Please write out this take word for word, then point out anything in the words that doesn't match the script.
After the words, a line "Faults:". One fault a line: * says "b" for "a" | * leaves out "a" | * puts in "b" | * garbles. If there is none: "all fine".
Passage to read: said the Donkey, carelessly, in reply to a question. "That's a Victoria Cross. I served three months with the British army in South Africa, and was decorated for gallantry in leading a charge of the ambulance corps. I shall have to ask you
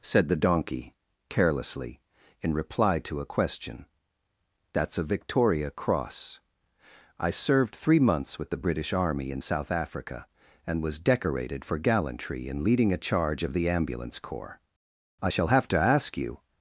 said the Donkey, carelessly, in reply to a question. "That's a Victoria Cross. I served three months with the British army in South Africa, and was decorated for gallantry in leading a charge of the ambulance corps. I shall have to ask you
Faults:
all fine